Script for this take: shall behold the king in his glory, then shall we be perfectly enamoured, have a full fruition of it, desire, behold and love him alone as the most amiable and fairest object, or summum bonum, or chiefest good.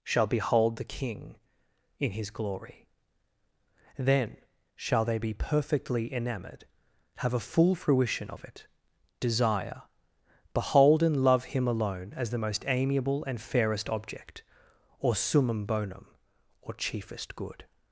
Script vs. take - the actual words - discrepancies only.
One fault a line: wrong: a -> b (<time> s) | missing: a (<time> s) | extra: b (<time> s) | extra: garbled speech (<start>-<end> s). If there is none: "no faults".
wrong: we -> they (5.0 s)